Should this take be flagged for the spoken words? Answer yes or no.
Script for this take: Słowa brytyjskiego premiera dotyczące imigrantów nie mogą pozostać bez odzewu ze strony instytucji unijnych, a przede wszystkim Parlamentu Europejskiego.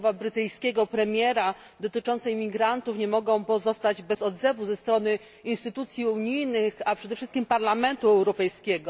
no